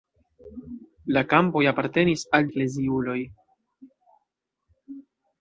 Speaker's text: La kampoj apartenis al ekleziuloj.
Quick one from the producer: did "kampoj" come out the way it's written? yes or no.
yes